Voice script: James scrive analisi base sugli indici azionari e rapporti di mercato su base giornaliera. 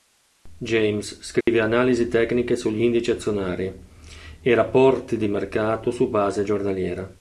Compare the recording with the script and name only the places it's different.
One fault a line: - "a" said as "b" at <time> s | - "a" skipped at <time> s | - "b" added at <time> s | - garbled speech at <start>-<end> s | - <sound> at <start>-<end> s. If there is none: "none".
- dropout at 1.4-1.5 s
- "base" said as "tecniche" at 2.1 s